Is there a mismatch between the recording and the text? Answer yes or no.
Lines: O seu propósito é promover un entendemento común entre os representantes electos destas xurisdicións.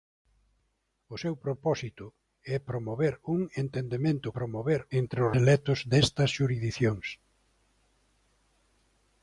yes